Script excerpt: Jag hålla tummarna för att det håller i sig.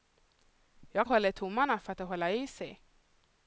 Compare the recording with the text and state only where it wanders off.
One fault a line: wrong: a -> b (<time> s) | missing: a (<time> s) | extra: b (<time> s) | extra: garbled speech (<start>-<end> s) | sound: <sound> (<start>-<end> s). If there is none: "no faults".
no faults